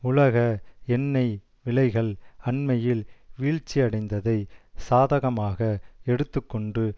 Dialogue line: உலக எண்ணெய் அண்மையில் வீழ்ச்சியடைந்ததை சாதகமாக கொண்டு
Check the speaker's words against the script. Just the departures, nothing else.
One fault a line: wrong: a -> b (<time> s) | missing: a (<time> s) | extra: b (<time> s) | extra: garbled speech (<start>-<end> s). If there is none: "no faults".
extra: விலைகள் (1.6 s)
extra: எடுத்து (6.0 s)